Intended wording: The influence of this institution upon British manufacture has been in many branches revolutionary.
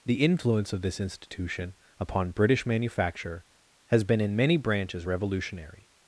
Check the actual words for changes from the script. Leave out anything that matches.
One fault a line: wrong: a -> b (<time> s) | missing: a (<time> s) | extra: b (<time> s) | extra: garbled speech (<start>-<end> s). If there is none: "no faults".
no faults